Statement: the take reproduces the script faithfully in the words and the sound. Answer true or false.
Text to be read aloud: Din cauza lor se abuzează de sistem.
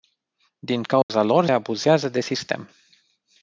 false